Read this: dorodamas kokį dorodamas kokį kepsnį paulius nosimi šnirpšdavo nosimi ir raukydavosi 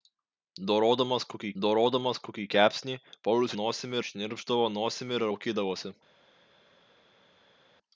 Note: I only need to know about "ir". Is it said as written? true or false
true